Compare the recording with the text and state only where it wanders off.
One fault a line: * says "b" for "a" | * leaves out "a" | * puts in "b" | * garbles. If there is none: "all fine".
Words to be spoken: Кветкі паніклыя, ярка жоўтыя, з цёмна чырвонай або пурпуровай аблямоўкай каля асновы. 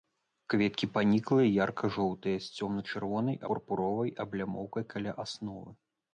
* leaves out "або"